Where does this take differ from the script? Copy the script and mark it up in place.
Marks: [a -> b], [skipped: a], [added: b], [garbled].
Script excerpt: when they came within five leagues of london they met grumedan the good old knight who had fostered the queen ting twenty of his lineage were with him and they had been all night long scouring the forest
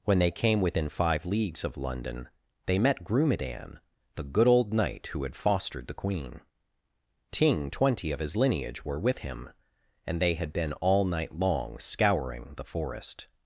when they came within five leagues of london they met grumedan the good old knight who had fostered the queen ting twenty of his lineage were with him and they had been all night long scouring the forest